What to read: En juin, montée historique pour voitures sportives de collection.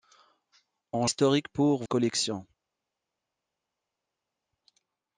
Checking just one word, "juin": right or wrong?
wrong